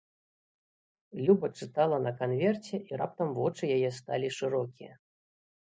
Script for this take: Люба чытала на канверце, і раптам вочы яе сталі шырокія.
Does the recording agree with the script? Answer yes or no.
yes